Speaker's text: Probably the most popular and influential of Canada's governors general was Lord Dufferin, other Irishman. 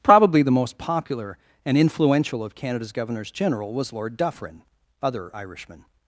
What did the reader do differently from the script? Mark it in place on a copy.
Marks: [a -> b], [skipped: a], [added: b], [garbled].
Probably the most popular and influential of Canada's governors general was Lord Dufferin, other Irishman.